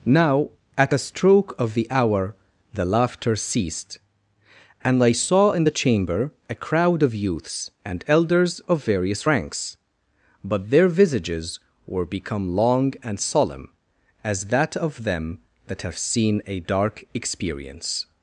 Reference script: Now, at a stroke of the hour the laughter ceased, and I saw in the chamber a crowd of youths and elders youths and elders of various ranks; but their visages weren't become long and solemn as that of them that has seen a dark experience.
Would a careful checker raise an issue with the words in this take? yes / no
yes